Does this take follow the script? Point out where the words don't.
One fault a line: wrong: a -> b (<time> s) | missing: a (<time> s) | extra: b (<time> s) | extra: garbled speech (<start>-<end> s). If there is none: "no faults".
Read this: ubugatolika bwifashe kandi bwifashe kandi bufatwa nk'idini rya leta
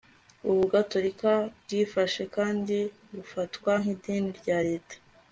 missing: bwifashe kandi (2.8 s)